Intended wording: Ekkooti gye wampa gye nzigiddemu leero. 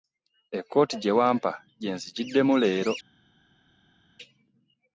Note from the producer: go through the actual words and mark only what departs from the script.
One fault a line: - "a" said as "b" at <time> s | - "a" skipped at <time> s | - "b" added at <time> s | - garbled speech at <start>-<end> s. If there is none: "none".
none